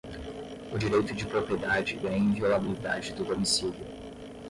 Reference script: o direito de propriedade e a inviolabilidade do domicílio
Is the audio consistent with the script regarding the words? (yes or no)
yes